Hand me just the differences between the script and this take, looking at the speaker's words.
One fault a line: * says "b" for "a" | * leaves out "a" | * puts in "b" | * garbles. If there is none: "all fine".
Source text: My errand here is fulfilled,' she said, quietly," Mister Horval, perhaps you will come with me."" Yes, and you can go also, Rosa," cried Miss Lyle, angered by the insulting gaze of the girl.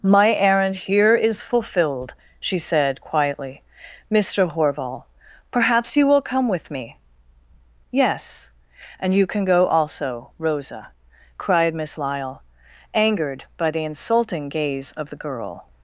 all fine